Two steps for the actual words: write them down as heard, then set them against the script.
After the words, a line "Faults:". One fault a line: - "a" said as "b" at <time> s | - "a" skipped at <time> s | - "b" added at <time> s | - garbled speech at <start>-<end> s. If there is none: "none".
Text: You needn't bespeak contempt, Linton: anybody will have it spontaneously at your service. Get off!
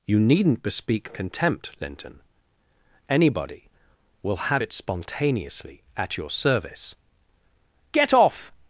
You needn't bespeak contempt, Linton: anybody will have it spontaneously at your service. Get off!
Faults:
none